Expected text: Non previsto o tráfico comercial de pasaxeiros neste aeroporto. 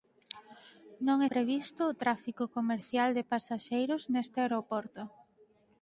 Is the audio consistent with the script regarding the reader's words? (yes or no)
yes